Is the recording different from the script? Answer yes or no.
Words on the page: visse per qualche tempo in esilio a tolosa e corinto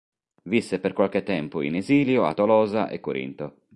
no